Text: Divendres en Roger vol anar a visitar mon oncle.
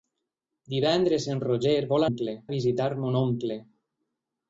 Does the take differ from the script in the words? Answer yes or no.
yes